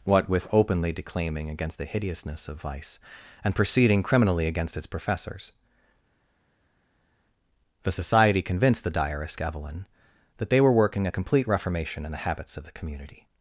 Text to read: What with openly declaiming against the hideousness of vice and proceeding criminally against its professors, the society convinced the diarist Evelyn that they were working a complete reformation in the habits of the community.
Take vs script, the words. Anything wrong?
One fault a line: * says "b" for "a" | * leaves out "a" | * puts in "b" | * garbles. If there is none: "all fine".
all fine